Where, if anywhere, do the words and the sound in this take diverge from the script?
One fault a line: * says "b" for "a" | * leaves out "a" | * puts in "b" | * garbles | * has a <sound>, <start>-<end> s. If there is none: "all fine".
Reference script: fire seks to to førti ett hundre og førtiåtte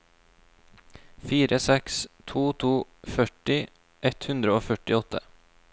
all fine